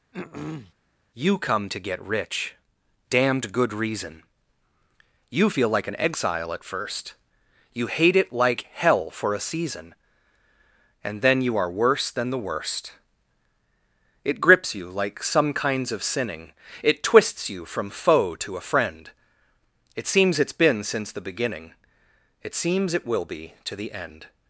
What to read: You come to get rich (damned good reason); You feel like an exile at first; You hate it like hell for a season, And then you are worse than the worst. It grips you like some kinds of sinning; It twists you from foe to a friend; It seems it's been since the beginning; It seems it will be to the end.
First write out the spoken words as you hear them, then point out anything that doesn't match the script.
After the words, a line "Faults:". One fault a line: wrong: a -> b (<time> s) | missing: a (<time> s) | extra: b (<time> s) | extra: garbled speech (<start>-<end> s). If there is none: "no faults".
You come to get rich (damned good reason); You feel like an exile at first; You hate it like hell for a season, And then you are worse than the worst. It grips you like some kinds of sinning; It twists you from foe to a friend; It seems it's been since the beginning; It seems it will be to the end.
Faults:
no faults